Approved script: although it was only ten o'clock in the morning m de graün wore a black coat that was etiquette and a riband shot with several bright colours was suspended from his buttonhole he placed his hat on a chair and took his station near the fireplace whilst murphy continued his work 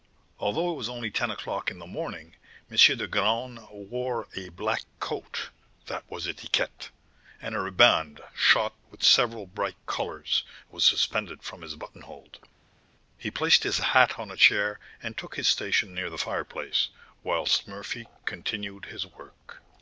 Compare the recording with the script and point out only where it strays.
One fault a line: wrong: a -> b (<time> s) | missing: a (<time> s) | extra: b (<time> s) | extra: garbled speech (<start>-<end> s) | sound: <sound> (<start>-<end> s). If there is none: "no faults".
no faults